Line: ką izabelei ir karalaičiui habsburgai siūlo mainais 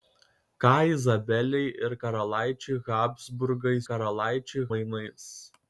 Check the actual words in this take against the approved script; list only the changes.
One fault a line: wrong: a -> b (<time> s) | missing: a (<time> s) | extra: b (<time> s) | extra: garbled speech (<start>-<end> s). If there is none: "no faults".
wrong: siūlo -> karalaičiui (3.9 s)